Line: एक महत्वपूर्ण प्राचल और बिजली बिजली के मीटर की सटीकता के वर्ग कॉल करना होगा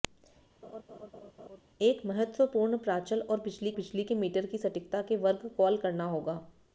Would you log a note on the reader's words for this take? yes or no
no